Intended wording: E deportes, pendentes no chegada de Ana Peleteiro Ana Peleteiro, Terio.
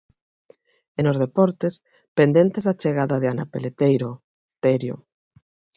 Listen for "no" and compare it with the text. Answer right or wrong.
wrong